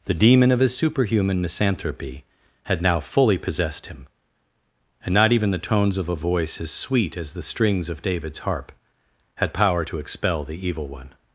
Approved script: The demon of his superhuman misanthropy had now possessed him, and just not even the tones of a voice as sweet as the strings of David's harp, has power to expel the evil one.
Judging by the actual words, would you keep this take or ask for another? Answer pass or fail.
fail